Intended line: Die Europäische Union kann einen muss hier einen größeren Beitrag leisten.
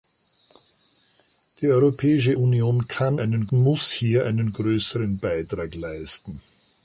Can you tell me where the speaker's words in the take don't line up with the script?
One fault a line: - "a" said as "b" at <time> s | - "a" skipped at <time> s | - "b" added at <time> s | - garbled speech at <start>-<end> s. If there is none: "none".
none